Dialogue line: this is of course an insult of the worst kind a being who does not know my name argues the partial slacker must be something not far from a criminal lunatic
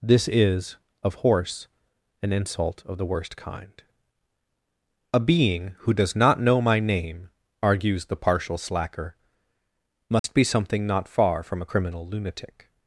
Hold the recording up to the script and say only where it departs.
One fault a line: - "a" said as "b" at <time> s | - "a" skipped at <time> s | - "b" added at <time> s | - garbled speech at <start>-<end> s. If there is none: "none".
- "course" said as "horse" at 1.1 s